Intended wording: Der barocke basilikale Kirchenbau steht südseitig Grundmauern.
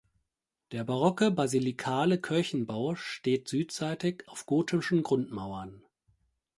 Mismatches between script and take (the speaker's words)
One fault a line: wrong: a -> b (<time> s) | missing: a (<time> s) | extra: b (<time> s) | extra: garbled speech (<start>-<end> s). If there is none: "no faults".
extra: auf gotischen (4.3 s)